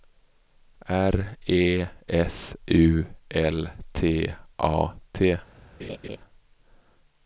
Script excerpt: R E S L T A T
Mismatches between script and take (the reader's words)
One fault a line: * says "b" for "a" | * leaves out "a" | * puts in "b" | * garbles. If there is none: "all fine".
* puts in "U"